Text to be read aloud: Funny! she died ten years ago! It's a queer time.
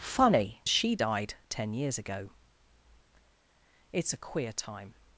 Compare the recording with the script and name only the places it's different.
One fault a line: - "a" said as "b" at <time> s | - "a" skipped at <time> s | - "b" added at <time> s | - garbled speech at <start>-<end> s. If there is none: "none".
none